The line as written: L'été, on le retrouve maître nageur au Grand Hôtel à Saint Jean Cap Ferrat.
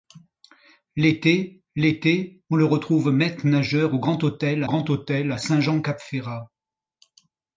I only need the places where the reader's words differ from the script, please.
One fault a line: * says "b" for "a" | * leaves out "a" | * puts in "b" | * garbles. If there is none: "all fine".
* puts in "l'été"
* puts in "Grand Hôtel"